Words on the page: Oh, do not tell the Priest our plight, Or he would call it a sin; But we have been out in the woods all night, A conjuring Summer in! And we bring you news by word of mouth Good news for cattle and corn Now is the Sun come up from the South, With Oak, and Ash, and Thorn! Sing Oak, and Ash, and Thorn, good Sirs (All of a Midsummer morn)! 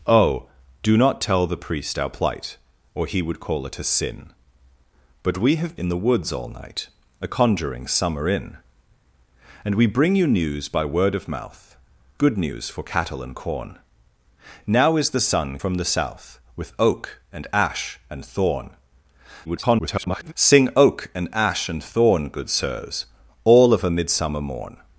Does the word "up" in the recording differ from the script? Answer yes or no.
yes